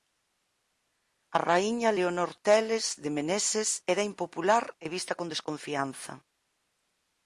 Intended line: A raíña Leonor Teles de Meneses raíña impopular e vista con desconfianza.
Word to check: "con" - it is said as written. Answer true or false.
true